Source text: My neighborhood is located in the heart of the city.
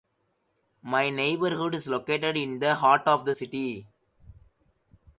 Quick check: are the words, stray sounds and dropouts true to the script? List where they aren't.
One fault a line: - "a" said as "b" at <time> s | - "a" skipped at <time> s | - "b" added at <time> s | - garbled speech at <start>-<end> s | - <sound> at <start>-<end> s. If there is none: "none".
none